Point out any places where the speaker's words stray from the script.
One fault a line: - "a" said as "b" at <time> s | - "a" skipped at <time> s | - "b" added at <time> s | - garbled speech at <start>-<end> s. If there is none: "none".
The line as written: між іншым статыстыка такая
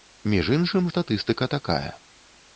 none